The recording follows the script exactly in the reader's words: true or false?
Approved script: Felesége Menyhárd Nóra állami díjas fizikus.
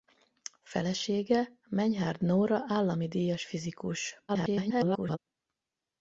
false